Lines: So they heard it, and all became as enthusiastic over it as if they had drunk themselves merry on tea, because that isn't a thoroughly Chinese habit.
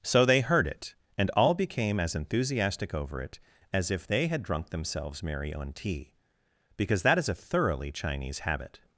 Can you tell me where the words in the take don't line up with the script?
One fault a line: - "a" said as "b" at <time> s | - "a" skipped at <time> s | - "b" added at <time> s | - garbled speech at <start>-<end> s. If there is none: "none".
- "isn't" said as "is" at 7.2 s